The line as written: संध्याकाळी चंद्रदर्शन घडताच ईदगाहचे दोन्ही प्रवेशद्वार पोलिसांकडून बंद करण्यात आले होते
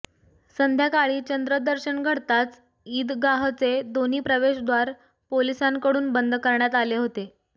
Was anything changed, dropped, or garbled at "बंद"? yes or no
no